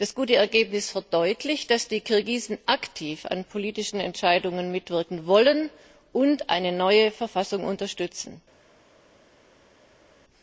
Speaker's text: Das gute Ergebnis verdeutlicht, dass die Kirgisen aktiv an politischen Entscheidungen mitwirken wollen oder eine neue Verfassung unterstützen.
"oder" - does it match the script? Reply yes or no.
no